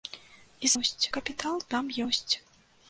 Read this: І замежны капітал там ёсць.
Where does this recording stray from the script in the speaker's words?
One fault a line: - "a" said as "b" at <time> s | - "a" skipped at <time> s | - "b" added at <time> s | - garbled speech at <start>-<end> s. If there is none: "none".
- "замежны" said as "ёсць" at 0.8 s